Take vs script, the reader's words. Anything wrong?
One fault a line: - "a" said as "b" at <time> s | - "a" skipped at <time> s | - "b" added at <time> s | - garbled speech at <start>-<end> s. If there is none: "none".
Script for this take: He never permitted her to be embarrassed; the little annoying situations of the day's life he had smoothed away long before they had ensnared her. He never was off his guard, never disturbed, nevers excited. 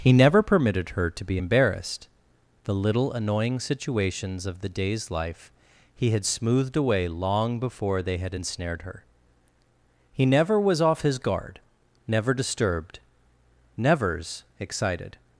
none